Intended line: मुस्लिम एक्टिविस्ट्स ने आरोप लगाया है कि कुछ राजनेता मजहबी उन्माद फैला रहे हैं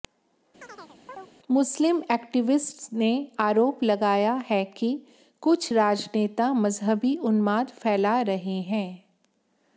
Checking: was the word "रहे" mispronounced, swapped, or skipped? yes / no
no